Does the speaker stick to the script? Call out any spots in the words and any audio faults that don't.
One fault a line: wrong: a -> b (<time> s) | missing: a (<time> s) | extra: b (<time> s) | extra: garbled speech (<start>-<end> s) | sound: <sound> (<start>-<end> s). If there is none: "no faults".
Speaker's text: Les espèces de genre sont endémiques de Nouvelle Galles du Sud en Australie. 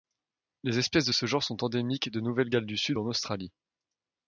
extra: ce (1.1 s)